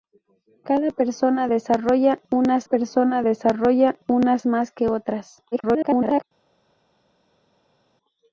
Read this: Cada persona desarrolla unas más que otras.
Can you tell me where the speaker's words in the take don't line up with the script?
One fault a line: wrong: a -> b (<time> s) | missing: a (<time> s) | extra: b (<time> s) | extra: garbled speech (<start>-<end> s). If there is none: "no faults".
extra: persona desarrolla unas (2.6 s)
extra: garbled speech (5.5-6.2 s)